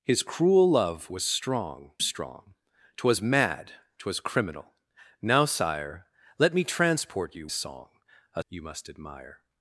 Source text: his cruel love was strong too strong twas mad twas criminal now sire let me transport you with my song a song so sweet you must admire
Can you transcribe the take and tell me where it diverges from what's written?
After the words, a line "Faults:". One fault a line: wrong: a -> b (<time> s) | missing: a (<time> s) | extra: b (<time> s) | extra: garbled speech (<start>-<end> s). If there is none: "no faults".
his cruel love was strong strong twas mad twas criminal now sire let me transport you song a you must admire
Faults:
missing: too (1.9 s)
missing: with my (7.5 s)
missing: song so sweet (8.4 s)